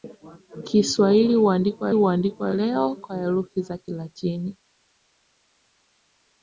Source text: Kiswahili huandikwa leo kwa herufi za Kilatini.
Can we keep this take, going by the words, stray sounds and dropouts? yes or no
no